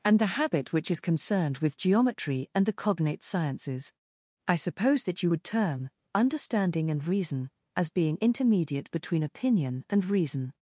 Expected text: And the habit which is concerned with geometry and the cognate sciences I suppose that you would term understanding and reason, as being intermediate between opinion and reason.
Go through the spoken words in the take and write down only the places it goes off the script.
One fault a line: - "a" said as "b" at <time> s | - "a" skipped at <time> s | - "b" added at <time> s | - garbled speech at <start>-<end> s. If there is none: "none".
none